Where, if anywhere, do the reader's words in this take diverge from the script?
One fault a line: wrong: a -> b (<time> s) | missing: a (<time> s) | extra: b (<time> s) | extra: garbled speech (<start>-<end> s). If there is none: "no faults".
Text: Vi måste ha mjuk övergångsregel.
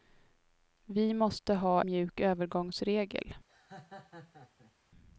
no faults